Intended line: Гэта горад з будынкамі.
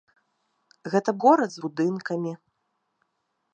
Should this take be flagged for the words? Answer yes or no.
no